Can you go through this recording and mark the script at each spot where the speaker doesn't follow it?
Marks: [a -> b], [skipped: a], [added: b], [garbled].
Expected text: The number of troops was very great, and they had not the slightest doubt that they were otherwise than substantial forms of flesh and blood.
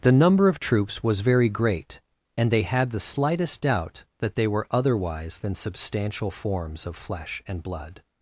The number of troops was very great, and they had [skipped: not] the slightest doubt that they were otherwise than substantial forms of flesh and blood.